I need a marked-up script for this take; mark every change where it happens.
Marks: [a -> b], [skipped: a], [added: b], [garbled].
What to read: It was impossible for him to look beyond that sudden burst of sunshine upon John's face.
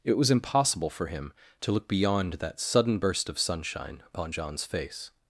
It was impossible for him to look beyond that sudden burst of sunshine upon John's face.